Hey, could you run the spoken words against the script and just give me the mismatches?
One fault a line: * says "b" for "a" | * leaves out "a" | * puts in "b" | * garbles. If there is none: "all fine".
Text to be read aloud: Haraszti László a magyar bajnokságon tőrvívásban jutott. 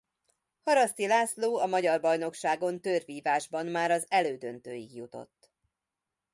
* puts in "már az elődöntőig"